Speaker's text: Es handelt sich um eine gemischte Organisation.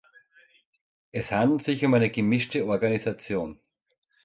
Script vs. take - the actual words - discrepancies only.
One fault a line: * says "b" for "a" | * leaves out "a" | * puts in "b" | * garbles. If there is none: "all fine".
all fine